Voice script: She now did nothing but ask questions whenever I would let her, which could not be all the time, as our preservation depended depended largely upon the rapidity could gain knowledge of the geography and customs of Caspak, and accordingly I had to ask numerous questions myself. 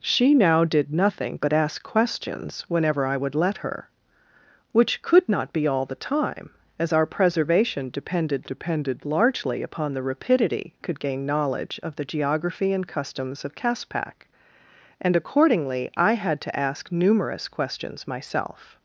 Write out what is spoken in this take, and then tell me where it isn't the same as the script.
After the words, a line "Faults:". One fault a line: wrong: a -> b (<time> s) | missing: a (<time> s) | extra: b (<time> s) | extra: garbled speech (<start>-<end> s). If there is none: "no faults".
She now did nothing but ask questions whenever I would let her, which could not be all the time, as our preservation depended depended largely upon the rapidity could gain knowledge of the geography and customs of Caspak, and accordingly I had to ask numerous questions myself.
Faults:
no faults